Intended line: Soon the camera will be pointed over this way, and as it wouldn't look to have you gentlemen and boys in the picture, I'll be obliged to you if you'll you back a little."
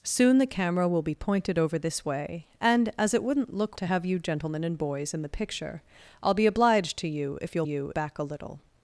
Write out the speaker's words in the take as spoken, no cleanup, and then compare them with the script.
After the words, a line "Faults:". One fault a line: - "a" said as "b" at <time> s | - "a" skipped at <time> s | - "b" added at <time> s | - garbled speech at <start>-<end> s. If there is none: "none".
Soon the camera will be pointed over this way, and as it wouldn't look to have you gentlemen and boys in the picture, I'll be obliged to you if you'll you back a little."
Faults:
none